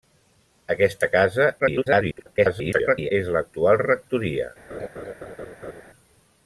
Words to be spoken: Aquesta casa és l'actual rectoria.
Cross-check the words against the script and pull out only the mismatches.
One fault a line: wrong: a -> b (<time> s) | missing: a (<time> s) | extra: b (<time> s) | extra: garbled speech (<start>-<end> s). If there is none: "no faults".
extra: garbled speech (1.6-3.1 s)